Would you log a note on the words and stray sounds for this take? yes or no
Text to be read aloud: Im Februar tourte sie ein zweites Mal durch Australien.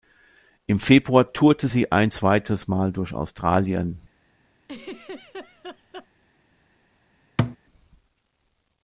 yes